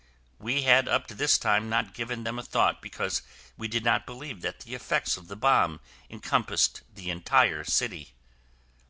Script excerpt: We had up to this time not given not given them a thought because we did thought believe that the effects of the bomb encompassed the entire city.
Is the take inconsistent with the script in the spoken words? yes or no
yes